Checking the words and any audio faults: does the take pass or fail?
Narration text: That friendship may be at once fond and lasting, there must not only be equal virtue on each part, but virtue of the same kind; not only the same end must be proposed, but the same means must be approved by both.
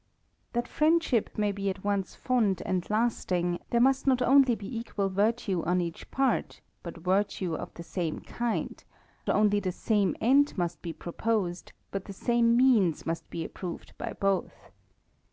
fail